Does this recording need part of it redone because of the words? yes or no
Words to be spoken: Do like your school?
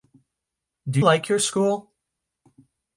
no